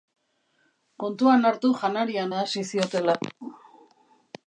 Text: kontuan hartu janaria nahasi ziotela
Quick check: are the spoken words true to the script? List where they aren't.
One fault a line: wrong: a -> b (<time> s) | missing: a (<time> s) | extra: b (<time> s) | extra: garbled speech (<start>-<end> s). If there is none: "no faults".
no faults